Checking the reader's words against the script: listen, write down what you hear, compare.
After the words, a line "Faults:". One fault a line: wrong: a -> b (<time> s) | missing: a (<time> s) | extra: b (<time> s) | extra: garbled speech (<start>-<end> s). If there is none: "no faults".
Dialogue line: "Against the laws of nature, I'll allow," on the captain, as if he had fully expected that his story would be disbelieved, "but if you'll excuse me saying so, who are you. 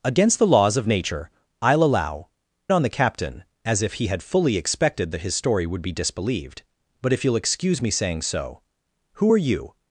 "Against the laws of nature, I'll allow," on the captain, as if he had fully expected that his story would be disbelieved, "but if you'll excuse me saying so, who are you.
Faults:
no faults